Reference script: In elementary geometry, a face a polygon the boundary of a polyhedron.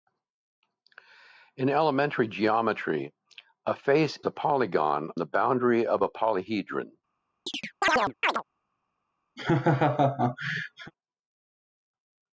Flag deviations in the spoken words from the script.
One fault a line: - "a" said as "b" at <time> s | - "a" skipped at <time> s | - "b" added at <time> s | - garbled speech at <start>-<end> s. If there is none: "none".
none